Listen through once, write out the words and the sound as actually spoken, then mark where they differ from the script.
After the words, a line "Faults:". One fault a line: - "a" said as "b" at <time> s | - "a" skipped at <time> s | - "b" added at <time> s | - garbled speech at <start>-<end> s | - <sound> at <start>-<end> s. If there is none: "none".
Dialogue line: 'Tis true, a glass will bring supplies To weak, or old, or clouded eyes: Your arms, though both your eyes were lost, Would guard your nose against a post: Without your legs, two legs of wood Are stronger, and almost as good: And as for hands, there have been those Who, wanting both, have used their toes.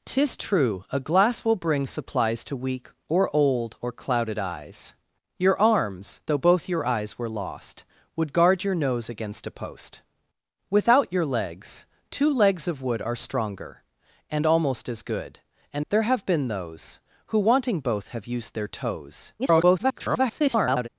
'Tis true, a glass will bring supplies To weak, or old, or clouded eyes: Your arms, though both your eyes were lost, Would guard your nose against a post: Without your legs, two legs of wood Are stronger, and almost as good: And there have been those Who, wanting both, have used their toes. [garbled]
Faults:
- "as for hands" skipped at 15.8 s
- garbled speech at 19.4-20.9 s